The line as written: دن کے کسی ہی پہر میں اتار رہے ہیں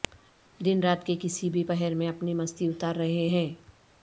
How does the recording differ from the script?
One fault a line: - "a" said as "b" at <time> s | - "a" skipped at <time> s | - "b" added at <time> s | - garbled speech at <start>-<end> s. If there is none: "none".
- "رات" added at 0.8 s
- "ہی" said as "بھی" at 1.5 s
- "اپنی مستی" added at 2.1 s